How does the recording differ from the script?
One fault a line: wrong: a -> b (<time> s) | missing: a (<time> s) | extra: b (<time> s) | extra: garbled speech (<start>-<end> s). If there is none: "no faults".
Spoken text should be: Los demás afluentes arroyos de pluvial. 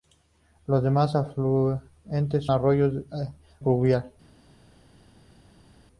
no faults